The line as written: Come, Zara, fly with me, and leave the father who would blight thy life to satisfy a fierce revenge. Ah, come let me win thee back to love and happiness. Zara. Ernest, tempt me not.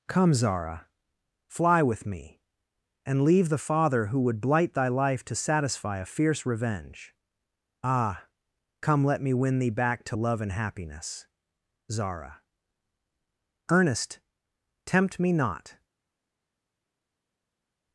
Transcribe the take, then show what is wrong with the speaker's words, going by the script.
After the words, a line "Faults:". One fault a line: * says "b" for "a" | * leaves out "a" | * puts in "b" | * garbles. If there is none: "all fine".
Come, Zara, fly with me, and leave the father who would blight thy life to satisfy a fierce revenge. Ah, come let me win thee back to love and happiness. Zara. Ernest, tempt me not.
Faults:
all fine